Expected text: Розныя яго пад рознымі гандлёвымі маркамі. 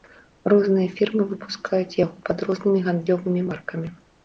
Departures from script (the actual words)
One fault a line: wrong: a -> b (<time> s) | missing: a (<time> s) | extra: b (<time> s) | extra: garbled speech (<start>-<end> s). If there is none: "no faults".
extra: фірмы выпускаюць (1.0 s)